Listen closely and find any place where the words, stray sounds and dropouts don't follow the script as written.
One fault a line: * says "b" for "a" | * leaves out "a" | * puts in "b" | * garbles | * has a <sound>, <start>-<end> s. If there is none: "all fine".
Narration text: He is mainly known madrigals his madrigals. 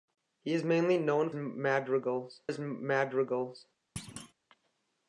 * has a thud, 4.0-4.3 s